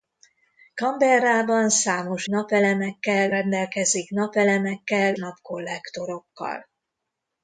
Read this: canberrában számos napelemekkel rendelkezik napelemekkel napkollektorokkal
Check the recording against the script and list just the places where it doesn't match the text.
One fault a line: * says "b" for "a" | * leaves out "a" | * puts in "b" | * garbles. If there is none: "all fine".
all fine